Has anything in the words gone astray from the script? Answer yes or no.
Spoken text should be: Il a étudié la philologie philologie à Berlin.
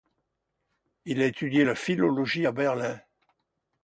yes